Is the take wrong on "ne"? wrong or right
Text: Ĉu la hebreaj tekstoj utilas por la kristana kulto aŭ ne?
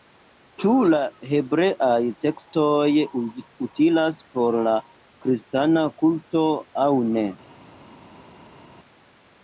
right